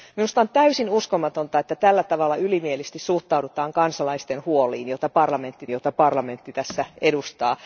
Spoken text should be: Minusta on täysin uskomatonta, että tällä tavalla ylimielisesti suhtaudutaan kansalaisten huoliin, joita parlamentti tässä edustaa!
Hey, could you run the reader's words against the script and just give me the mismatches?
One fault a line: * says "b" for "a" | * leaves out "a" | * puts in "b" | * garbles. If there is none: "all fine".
* puts in "joita parlamentti"